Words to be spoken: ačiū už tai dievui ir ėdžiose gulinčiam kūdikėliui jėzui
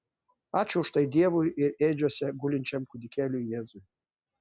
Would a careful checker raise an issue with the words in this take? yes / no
no